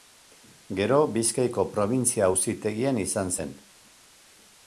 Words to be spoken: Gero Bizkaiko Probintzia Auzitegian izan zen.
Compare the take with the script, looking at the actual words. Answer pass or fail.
pass